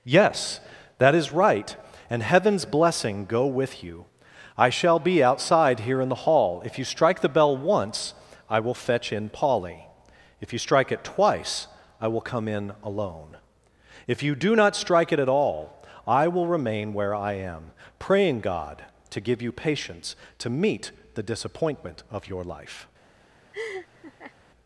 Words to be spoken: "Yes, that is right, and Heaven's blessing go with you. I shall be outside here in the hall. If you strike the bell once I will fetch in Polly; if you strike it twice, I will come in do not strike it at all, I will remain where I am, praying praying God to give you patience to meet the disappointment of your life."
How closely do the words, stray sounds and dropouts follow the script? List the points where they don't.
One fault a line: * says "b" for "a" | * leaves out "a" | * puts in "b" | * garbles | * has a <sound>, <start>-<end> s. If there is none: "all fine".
* puts in "alone if you"
* leaves out "praying"
* has a laugh, 23.5-24.3 s